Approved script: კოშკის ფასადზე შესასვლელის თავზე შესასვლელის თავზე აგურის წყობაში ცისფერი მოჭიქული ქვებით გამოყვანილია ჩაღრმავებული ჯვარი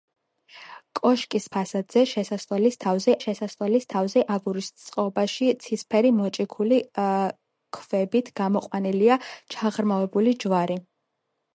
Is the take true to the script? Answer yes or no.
yes